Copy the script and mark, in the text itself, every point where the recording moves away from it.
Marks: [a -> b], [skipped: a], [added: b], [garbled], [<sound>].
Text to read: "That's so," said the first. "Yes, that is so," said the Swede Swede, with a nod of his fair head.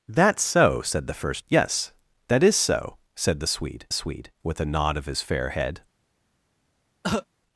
"That's so," said the first. "Yes, that is so," said the Swede Swede, with a nod of his fair head. [cough]